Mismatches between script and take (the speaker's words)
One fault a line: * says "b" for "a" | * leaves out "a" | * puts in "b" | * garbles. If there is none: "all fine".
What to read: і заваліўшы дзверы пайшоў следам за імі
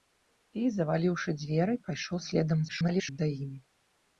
* garbles